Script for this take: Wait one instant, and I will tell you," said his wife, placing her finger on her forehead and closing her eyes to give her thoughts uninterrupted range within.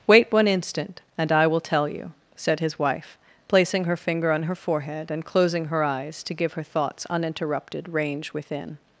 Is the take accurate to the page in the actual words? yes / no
yes